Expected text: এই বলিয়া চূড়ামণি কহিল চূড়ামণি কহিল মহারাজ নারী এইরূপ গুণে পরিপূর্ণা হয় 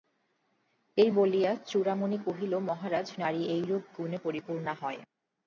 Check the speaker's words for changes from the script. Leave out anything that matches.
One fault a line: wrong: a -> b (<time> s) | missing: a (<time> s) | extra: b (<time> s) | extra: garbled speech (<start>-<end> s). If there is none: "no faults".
missing: চূড়ামণি কহিল (2.5 s)